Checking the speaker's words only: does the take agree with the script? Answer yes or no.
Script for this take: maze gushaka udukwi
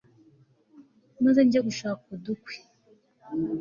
no